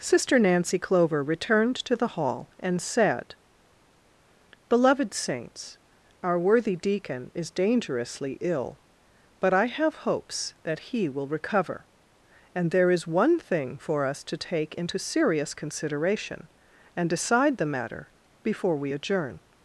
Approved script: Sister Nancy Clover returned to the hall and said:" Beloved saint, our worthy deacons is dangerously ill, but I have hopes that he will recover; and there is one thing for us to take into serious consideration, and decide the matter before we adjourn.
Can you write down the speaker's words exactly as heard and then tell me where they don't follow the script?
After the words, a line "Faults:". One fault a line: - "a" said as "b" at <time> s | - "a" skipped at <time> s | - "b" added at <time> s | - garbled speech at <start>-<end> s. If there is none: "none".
Sister Nancy Clover returned to the hall and said:" Beloved saints, our worthy deacon is dangerously ill, but I have hopes that he will recover; and there is one thing for us to take into serious consideration, and decide the matter before we adjourn.
Faults:
- "saint" said as "saints" at 5.1 s
- "deacons" said as "deacon" at 6.7 s